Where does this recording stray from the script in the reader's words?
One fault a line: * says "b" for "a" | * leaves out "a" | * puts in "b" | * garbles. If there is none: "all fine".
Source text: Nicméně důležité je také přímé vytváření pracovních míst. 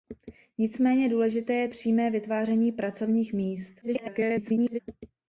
* leaves out "také"
* garbles